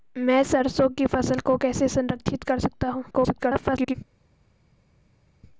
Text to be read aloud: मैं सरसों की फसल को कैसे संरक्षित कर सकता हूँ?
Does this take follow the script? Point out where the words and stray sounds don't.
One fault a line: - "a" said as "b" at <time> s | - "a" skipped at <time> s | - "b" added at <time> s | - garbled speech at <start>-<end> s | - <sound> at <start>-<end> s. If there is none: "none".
- garbled speech at 3.1-4.0 s